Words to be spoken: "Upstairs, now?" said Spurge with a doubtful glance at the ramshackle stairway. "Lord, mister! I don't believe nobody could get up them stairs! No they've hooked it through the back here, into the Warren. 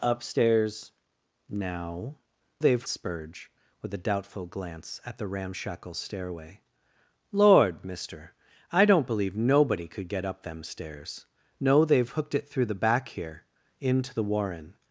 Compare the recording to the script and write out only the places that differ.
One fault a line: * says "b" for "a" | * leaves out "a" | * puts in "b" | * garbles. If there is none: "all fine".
* says "they've" for "said"